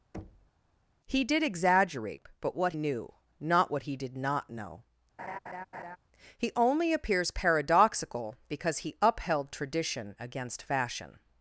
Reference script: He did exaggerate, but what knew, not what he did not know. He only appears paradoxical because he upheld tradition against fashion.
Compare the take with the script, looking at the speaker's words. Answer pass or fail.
pass